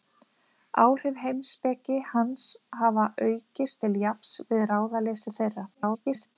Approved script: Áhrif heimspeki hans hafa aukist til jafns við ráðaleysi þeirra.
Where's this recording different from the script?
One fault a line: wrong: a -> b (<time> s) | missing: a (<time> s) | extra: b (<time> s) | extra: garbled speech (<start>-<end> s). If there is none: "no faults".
extra: garbled speech (5.7-6.4 s)